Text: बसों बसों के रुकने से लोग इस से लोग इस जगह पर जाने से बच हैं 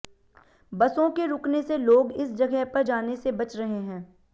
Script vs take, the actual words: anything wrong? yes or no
yes